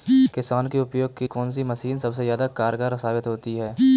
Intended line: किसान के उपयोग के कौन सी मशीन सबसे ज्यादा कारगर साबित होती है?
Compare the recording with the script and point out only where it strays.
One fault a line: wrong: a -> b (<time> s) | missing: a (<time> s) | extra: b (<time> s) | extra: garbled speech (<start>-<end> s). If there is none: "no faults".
no faults